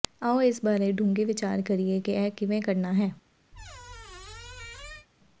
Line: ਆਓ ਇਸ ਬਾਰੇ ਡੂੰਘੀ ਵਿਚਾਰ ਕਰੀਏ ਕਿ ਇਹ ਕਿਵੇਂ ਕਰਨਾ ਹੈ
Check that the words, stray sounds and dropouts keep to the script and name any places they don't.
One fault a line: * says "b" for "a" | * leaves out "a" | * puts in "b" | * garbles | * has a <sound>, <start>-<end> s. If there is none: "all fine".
* has a squeak, 3.5-5.1 s